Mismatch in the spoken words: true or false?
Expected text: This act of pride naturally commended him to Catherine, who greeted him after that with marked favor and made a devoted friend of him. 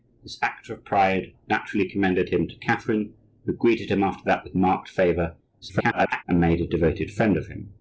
true